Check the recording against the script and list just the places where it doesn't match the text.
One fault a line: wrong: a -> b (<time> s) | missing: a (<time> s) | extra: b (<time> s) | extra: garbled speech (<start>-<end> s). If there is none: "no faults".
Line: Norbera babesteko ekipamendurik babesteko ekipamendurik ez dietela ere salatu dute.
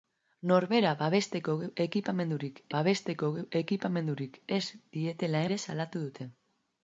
no faults